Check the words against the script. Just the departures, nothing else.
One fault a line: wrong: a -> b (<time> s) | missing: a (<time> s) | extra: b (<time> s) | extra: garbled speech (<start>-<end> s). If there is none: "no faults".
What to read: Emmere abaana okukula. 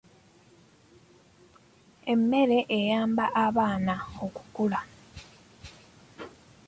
extra: eyamba (2.8 s)